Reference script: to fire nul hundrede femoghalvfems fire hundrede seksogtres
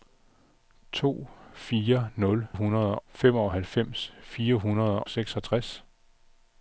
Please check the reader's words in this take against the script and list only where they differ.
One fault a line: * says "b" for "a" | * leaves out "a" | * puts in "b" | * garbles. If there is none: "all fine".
all fine